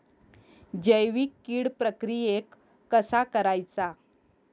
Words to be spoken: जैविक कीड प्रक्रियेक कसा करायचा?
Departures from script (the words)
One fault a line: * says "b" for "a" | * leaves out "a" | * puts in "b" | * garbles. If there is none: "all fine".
all fine